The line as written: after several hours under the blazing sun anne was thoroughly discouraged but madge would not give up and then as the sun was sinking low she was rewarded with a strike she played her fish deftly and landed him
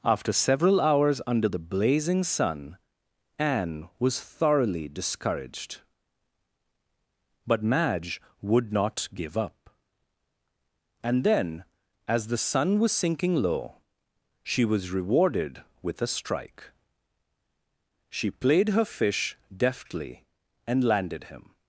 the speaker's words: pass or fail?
pass